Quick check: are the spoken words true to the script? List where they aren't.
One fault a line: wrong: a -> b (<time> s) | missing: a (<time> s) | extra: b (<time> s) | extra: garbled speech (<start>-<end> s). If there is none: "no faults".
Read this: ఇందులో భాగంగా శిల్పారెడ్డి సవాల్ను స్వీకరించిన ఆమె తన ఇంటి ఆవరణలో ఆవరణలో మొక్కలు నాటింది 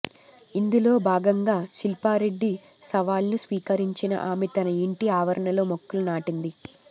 missing: ఆవరణలో (5.6 s)